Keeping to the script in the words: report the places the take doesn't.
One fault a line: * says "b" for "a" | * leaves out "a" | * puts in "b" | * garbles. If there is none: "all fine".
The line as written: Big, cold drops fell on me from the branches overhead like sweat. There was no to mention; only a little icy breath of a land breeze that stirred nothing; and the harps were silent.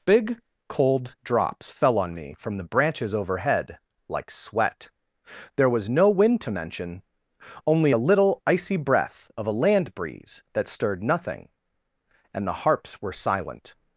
* puts in "wind"